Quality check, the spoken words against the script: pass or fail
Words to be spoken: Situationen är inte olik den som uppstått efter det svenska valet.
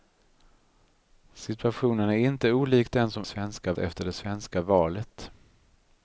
fail